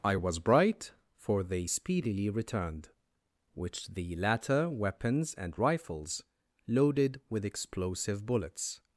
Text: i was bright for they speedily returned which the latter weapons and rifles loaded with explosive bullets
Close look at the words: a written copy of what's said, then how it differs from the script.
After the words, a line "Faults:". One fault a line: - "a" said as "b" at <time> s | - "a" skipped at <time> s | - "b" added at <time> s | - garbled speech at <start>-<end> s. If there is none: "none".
i was bright for they speedily returned which the latter weapons and rifles loaded with explosive bullets
Faults:
none